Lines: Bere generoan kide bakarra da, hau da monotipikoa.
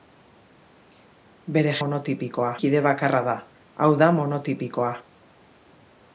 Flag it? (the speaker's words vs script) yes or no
yes